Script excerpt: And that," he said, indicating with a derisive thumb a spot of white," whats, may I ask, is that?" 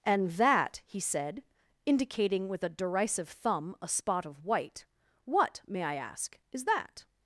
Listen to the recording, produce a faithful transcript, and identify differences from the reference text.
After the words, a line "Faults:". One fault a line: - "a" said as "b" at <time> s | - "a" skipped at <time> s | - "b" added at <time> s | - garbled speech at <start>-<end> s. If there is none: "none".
And that," he said, indicating with a derisive thumb a spot of white," what, may I ask, is that?"
Faults:
- "whats" said as "what" at 5.2 s